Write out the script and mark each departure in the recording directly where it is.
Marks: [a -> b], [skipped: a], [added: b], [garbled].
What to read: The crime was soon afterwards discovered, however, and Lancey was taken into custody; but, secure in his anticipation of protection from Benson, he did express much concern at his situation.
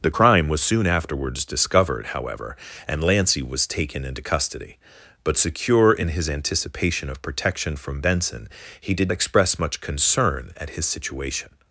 The crime was soon afterwards discovered, however, and Lancey was taken into custody; but, secure in his anticipation of protection from Benson, he did express much concern at his situation.